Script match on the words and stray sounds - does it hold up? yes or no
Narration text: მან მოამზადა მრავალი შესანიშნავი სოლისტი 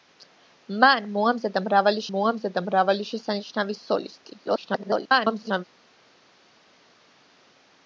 no